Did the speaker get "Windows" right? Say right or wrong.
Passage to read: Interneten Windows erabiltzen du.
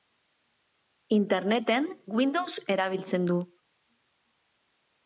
right